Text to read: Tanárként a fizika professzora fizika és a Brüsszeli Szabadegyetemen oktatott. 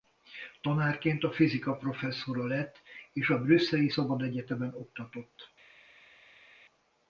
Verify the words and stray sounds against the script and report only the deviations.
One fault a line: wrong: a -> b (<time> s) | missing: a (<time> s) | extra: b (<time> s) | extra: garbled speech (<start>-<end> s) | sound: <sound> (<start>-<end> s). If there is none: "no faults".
wrong: fizika -> lett (2.5 s)